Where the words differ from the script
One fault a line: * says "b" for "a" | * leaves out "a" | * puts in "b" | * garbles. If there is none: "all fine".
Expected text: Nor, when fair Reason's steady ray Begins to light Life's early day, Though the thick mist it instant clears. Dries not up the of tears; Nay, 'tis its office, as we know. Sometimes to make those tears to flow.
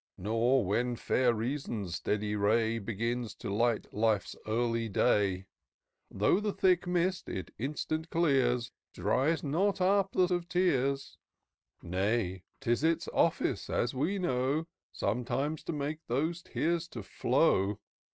all fine